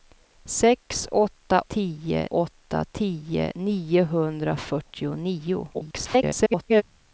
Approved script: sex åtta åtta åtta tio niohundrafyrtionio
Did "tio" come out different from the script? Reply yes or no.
no